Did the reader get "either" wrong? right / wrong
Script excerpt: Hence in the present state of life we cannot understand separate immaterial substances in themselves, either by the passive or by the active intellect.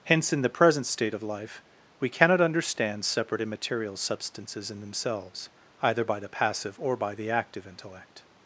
right